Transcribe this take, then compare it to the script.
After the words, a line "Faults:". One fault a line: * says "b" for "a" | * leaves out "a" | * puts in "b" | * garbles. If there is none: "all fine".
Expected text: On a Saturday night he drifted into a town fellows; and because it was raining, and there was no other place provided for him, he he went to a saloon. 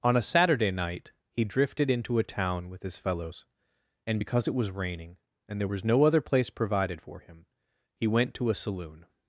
On a Saturday night he drifted into a town with his fellows; and because it was raining, and there was no other place provided for him, he went to a saloon.
Faults:
* puts in "with his"
* leaves out "he"